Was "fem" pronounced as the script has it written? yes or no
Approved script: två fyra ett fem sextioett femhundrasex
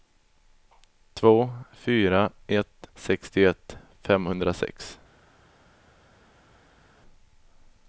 no